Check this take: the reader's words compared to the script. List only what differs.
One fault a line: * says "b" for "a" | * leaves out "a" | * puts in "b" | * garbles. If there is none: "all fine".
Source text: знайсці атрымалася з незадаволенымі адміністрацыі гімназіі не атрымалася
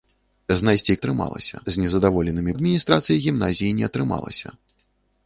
all fine